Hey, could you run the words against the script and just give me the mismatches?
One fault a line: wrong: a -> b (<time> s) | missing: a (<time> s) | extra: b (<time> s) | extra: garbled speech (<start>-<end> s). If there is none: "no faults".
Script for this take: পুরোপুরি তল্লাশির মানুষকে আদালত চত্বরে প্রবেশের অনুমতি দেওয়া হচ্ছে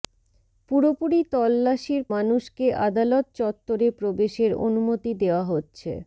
no faults